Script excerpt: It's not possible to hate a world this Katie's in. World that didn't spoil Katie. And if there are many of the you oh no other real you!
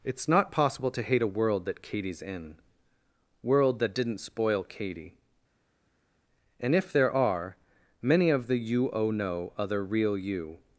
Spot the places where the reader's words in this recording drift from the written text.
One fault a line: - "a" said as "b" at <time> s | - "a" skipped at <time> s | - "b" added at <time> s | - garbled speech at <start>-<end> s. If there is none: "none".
- "this" said as "that" at 1.6 s